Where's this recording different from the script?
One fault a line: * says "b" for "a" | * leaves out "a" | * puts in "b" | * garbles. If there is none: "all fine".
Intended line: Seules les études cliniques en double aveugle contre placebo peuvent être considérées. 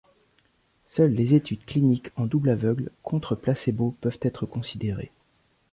all fine